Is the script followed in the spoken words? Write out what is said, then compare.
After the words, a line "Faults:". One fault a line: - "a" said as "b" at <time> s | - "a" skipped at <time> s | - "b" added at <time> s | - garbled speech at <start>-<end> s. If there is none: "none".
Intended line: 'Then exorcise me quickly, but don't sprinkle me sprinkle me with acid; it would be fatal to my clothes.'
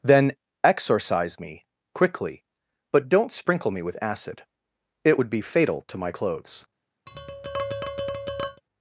'Then exorcise me quickly, but don't sprinkle me with acid; it would be fatal to my clothes.'
Faults:
- "sprinkle me" skipped at 3.8 s